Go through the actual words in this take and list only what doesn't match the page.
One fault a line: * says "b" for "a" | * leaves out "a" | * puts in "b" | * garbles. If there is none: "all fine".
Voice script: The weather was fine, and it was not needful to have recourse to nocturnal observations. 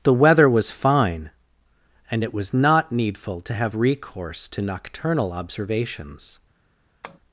all fine